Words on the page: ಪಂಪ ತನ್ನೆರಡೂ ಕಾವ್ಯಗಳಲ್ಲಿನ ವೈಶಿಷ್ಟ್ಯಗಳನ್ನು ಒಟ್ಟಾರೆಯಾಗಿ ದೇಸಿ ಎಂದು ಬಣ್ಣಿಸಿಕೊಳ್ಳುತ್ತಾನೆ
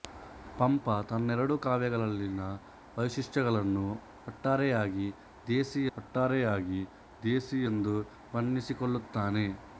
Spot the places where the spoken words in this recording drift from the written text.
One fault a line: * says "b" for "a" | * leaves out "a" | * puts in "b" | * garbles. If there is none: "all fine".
* puts in "ಒಟ್ಟಾರೆಯಾಗಿ ದೇಸಿ"